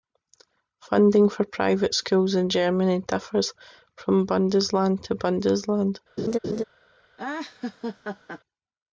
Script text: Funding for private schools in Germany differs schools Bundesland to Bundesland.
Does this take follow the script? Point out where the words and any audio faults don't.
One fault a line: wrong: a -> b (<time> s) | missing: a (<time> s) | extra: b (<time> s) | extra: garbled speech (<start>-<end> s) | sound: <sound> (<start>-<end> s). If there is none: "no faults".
wrong: schools -> from (4.0 s)
sound: laugh (6.2-6.6 s)
sound: laugh (7.2-8.4 s)